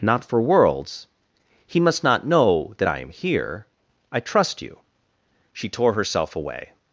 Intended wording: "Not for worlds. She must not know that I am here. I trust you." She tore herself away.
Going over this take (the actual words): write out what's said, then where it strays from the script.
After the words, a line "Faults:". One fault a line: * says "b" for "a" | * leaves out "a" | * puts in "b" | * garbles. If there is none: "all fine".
"Not for worlds. He must not know that I am here. I trust you." She tore herself away.
Faults:
* says "He" for "She"